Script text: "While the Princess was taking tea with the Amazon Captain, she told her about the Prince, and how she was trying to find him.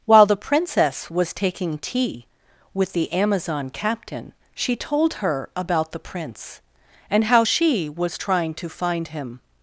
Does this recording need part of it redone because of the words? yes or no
no